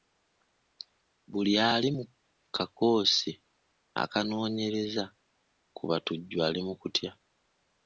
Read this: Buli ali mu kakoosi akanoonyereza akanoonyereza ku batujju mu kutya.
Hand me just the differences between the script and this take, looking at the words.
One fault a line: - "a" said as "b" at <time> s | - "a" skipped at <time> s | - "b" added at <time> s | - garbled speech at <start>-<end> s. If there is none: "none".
- "akanoonyereza" skipped at 5.0 s
- "ali" added at 6.5 s